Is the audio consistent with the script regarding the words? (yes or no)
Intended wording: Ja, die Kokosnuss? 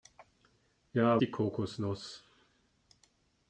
yes